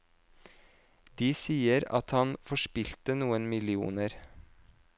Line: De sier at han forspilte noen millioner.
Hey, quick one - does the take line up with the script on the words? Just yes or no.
yes